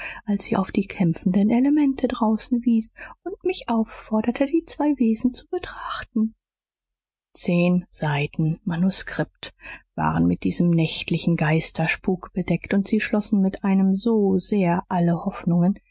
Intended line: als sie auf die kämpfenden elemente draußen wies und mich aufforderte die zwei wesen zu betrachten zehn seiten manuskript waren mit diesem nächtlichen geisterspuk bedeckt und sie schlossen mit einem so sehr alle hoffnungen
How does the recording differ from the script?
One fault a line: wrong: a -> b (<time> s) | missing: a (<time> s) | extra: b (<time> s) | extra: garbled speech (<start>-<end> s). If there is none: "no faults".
no faults